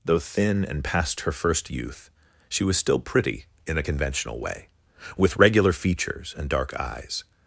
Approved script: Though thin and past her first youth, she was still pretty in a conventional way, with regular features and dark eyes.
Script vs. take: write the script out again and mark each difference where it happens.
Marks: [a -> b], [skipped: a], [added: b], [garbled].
Though thin and past her first youth, she was still pretty in a conventional way, with regular features and dark eyes.